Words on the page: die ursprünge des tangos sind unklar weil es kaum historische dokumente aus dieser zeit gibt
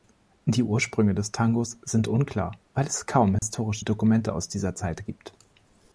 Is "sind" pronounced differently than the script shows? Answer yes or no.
no